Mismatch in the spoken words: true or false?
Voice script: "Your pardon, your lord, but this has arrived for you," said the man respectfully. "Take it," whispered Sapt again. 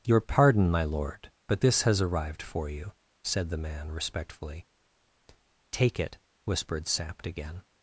true